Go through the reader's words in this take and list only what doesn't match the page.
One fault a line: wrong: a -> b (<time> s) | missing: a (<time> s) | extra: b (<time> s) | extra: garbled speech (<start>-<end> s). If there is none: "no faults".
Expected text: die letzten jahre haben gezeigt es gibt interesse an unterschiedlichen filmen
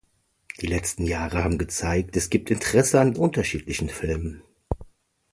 no faults